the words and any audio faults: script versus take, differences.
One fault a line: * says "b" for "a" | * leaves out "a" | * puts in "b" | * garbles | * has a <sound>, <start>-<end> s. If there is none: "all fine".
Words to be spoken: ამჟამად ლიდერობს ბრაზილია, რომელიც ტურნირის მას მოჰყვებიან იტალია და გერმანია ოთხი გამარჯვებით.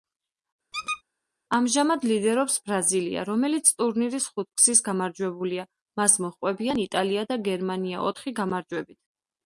* has a squeak, 0.7-1.0 s
* puts in "ხუთგზის გამარჯვებულია"